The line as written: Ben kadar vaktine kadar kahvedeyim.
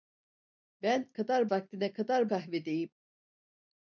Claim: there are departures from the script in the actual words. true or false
false